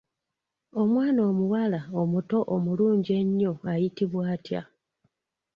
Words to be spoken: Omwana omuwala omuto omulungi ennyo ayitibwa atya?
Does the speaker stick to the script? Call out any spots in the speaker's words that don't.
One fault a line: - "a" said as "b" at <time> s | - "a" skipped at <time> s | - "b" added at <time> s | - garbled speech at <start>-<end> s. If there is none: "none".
none